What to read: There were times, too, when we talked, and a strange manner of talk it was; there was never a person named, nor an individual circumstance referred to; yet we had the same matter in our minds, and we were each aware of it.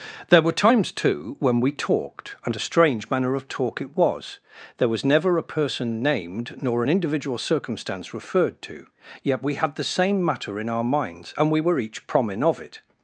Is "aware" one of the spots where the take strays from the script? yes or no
yes